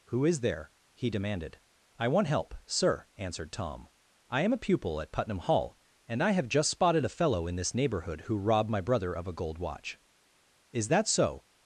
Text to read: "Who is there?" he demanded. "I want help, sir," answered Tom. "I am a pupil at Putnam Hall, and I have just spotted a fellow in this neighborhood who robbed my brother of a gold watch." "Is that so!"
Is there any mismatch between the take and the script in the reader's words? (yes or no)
no